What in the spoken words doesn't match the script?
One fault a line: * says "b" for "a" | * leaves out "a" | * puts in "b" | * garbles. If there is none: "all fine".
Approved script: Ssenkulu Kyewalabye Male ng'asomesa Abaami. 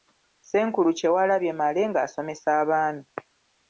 all fine